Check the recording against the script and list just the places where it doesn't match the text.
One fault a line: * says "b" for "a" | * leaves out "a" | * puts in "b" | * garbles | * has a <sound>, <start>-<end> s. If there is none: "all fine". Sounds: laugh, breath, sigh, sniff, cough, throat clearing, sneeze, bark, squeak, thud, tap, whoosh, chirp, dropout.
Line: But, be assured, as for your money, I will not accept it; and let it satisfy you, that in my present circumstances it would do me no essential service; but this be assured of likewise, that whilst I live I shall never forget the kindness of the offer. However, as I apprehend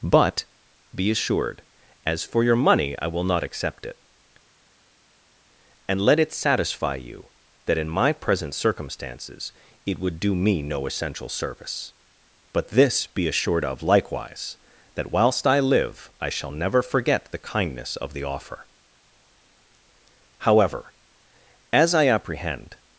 all fine